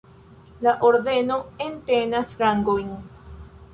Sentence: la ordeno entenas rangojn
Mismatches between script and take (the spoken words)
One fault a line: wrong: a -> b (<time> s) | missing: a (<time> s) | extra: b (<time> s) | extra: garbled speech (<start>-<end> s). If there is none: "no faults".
no faults